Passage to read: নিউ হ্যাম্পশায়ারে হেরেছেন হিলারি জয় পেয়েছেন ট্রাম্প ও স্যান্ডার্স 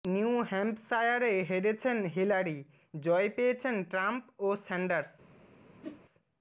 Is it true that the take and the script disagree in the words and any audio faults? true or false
true